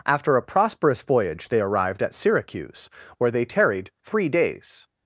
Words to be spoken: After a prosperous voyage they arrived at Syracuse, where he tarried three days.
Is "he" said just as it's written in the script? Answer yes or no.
no